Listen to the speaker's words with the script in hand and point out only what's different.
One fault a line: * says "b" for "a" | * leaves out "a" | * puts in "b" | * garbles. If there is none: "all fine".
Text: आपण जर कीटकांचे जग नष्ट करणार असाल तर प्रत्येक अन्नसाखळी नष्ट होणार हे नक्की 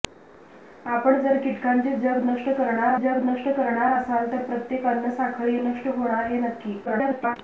* puts in "जग नष्ट करणार"
* garbles